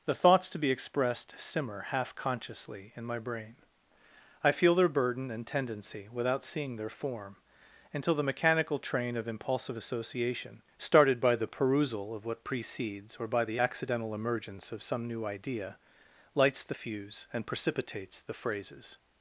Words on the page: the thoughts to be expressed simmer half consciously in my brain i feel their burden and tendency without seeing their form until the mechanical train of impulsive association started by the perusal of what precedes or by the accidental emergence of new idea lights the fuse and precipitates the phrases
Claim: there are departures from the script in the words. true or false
true